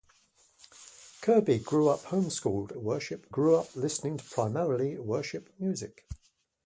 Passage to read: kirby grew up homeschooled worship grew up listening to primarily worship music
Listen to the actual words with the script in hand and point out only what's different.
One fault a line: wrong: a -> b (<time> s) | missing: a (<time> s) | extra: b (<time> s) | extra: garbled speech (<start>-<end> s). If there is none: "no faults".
no faults